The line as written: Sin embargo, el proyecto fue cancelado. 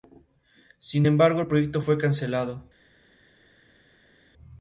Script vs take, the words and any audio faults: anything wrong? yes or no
no